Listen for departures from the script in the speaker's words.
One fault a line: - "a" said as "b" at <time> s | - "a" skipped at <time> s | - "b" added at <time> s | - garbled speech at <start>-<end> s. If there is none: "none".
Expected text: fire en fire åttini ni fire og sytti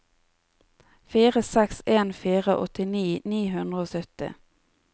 - "seks" added at 1.5 s
- "fire" said as "hundre" at 3.6 s